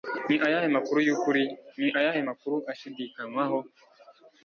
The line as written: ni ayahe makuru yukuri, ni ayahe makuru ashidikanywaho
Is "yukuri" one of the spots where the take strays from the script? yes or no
no